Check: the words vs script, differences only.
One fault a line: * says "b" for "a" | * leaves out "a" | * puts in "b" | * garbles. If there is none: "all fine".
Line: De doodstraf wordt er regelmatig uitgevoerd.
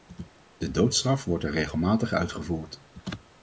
all fine